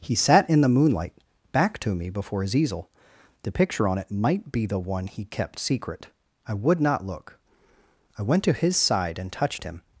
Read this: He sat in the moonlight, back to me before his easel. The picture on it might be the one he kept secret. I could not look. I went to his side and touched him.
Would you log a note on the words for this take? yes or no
yes